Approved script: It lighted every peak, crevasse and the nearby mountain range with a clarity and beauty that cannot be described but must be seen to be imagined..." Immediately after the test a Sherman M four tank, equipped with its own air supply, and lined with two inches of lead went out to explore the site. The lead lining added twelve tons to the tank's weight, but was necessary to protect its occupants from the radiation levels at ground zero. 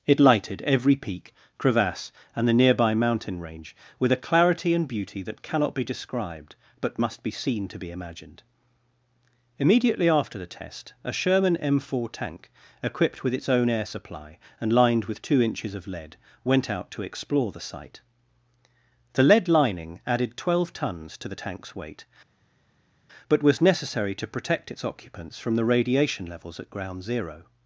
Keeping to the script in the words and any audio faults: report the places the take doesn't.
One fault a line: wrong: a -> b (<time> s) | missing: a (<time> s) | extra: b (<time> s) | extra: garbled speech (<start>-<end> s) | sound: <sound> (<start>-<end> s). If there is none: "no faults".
no faults